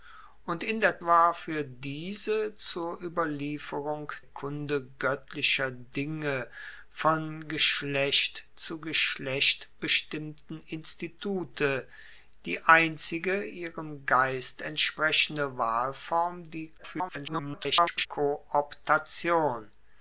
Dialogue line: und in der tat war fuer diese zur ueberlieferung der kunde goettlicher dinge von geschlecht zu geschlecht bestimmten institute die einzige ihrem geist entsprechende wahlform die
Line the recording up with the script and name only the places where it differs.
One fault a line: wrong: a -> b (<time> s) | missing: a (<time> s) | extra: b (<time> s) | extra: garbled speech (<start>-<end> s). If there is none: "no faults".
missing: tat (1.0 s)
missing: der (4.1 s)
extra: garbled speech (16.8-18.1 s)